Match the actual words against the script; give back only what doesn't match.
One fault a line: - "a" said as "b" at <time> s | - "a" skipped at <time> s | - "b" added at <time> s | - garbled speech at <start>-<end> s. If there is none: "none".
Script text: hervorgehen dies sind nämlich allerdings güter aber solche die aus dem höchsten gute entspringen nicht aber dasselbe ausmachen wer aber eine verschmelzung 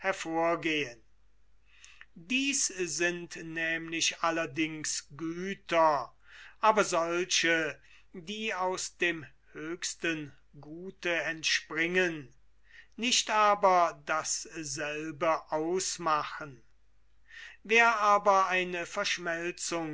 none